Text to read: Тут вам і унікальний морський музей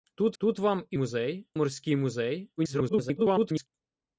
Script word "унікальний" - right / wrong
wrong